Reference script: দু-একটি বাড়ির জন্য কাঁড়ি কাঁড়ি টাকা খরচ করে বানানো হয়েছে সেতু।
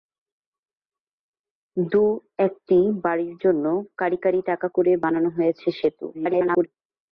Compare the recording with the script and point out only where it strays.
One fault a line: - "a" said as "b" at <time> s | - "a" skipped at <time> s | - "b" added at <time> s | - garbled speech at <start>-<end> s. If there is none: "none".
- "খরচ" skipped at 4.7 s
- garbled speech at 6.1-6.7 s